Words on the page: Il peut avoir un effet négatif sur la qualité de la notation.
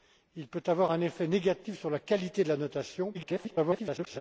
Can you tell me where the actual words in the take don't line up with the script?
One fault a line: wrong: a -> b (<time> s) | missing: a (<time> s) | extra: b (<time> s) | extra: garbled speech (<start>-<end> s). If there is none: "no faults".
extra: garbled speech (3.1-4.2 s)